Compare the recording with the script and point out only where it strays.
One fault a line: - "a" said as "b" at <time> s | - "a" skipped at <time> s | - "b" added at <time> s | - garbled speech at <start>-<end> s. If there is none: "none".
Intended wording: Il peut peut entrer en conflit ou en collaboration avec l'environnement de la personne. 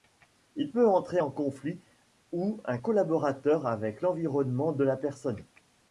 - "peut" skipped at 0.9 s